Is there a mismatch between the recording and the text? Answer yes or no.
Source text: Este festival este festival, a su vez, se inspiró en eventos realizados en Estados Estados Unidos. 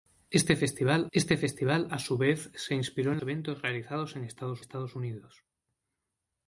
no